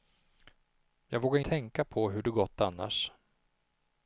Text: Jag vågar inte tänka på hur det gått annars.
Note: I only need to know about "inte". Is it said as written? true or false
false